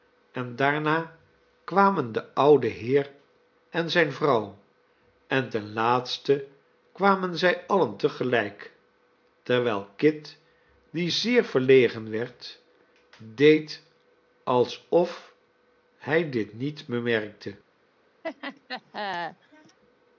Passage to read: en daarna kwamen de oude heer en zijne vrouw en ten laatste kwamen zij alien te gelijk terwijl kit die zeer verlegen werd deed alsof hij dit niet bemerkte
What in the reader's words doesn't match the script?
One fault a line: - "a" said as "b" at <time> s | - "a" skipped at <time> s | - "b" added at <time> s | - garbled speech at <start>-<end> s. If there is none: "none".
none